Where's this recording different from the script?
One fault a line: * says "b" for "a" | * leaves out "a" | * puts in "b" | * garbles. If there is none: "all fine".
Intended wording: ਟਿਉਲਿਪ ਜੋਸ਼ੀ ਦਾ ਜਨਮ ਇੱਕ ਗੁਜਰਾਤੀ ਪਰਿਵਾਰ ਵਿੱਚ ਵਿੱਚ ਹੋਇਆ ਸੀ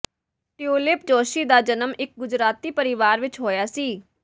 * leaves out "ਵਿੱਚ"